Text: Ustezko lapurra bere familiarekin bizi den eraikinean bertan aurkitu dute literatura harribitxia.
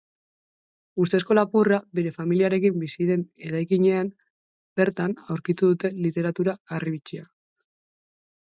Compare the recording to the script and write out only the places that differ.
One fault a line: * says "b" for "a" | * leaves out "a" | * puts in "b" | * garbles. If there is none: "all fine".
all fine